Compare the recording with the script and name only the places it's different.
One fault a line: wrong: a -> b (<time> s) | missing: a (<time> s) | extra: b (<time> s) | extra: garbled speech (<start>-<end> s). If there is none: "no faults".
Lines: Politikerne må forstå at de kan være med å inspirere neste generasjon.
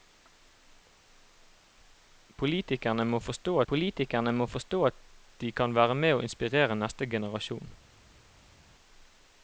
extra: politikerne må forstå (3.7 s)